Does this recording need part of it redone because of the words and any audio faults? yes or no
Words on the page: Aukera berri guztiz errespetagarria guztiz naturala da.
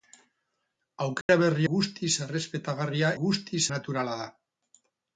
yes